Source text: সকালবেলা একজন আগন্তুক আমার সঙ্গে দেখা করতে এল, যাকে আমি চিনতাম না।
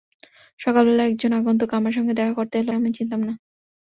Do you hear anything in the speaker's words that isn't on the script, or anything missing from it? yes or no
yes